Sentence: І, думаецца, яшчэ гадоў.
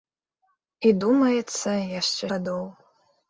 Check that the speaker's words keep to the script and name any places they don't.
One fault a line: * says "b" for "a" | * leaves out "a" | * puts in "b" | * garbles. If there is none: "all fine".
all fine